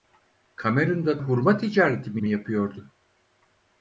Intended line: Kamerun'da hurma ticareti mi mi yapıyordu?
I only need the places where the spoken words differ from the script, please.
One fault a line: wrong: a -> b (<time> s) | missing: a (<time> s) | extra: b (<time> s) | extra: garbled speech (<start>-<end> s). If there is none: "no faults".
no faults